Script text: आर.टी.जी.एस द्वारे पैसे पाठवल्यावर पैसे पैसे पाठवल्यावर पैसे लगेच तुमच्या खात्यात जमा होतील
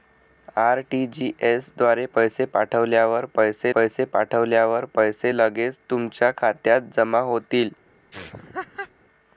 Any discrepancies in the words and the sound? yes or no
yes